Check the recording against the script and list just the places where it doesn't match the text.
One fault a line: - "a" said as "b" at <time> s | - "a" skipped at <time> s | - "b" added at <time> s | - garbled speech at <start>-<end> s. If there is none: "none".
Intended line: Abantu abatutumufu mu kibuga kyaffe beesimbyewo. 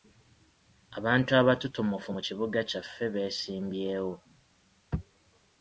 none